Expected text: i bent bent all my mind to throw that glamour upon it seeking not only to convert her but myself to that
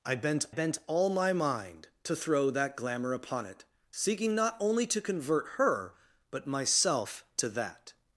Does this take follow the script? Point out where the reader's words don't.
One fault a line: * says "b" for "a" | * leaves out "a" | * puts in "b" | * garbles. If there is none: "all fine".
all fine